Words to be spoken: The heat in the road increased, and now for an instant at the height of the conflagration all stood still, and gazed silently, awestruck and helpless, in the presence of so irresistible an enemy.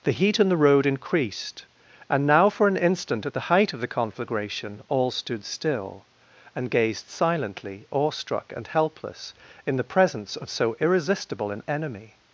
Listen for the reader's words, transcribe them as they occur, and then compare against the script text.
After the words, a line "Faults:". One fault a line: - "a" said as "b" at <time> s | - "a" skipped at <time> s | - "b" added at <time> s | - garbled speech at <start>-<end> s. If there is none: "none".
The heat in the road increased, and now for an instant at the height of the conflagration all stood still, and gazed silently, awestruck and helpless, in the presence of so irresistible an enemy.
Faults:
none